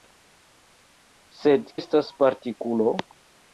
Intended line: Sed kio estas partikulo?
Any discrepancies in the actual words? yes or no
yes